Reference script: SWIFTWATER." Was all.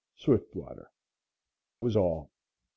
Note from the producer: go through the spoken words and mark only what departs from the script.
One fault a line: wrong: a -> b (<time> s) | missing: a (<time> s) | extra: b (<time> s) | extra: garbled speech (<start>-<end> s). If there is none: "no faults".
no faults